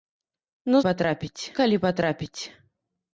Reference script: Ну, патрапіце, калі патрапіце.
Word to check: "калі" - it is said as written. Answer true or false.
true